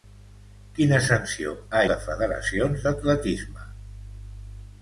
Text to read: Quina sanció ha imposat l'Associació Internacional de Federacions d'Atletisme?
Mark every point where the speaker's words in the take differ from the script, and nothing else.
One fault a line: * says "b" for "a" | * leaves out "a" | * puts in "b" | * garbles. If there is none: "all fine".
* leaves out "imposat l'Associació Internacional"